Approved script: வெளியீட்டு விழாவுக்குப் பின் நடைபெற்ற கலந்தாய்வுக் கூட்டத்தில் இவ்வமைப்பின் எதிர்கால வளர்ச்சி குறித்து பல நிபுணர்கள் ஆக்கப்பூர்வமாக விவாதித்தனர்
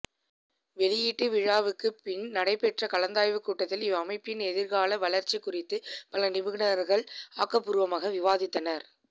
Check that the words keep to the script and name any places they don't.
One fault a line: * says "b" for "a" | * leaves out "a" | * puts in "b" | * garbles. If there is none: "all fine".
all fine